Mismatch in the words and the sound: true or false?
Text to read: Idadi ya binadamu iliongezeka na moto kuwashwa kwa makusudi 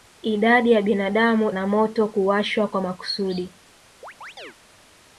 true